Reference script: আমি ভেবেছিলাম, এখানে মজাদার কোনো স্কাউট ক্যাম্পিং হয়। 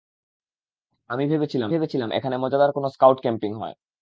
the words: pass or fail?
fail